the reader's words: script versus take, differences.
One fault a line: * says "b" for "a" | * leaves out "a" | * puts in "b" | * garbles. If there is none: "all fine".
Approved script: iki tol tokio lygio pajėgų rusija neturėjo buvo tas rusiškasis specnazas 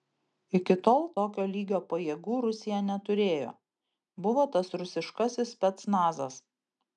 all fine